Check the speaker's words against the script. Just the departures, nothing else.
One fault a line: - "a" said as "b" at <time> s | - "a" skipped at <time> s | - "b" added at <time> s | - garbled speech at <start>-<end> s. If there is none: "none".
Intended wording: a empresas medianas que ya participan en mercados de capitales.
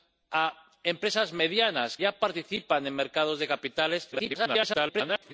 - "que" skipped at 2.0 s
- garbled speech at 4.1-5.3 s